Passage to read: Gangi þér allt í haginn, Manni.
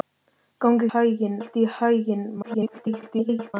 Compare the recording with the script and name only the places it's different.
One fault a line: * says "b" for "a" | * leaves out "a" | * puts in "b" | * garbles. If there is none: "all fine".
* says "haginn" for "þér"
* garbles